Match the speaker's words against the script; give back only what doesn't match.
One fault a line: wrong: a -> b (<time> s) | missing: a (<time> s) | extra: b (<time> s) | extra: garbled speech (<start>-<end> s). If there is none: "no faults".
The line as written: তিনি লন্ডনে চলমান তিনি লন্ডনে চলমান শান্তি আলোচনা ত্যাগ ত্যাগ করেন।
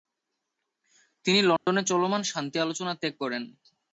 missing: তিনি লন্ডনে চলমান (2.2 s)
missing: ত্যাগ (3.1 s)